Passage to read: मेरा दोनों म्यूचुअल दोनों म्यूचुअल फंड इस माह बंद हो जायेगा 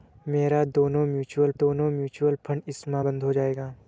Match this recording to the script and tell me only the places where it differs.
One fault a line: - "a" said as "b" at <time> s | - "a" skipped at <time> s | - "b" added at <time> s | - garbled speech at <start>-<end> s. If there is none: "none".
none